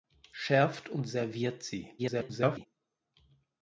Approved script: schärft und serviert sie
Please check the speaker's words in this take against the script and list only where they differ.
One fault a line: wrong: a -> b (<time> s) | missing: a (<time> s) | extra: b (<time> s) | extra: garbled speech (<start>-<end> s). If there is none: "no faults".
extra: garbled speech (2.0-2.7 s)